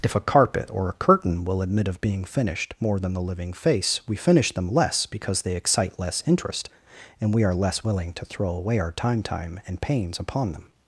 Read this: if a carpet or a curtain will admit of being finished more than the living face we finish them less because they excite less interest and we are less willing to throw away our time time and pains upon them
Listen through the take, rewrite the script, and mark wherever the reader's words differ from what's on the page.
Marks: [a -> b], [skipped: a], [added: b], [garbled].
if a carpet or a curtain will admit of being finished more than the living face we finish them less because they excite less interest and we are less willing to throw away our time time and pains upon them